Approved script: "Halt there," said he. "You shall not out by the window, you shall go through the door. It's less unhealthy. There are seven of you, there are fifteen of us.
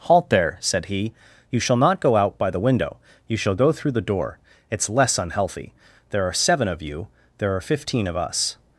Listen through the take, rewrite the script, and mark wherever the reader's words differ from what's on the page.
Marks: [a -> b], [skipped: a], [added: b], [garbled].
"Halt there," said he. "You shall not [added: go] out by the window, you shall go through the door. It's less unhealthy. There are seven of you, there are fifteen of us.